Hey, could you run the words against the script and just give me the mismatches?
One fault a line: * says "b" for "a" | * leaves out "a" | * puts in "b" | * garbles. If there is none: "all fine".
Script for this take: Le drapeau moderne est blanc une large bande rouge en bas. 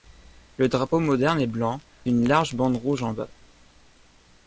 all fine